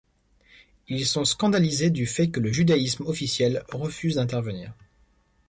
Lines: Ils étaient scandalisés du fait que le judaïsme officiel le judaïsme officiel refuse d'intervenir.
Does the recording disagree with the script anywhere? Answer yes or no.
yes